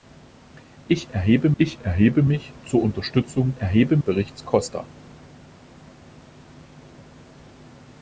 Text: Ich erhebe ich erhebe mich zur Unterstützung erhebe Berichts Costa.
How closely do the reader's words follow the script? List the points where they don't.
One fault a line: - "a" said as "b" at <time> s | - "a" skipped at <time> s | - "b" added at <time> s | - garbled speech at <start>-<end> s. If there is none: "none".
none